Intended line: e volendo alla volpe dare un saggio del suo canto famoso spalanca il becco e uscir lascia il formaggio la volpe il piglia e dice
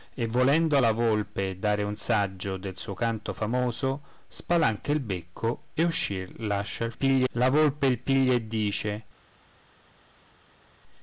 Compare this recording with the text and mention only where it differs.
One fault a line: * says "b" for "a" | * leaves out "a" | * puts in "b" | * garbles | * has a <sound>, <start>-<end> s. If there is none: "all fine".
* says "piglia" for "formaggio"